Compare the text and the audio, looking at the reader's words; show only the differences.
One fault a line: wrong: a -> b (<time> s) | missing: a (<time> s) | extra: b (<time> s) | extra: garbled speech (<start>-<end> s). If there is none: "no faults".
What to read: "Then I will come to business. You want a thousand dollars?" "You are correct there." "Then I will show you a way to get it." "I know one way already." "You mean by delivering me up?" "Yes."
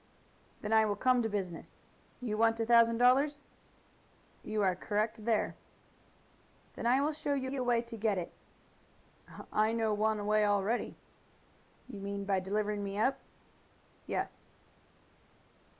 extra: you (7.5 s)